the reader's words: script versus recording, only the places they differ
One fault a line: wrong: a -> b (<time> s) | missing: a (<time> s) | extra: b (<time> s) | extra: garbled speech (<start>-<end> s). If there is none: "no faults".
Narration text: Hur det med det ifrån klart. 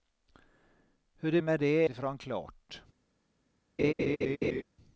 no faults